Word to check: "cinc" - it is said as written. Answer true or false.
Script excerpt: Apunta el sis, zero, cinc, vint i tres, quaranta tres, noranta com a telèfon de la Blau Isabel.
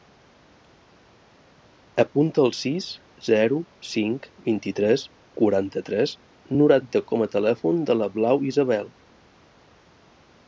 true